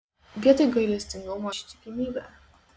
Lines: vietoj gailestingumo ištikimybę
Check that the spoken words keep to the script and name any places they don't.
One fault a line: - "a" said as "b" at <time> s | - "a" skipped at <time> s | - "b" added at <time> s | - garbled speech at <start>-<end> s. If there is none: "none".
none